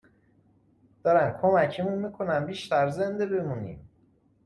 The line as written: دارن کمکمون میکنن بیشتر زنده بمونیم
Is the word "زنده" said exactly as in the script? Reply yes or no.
yes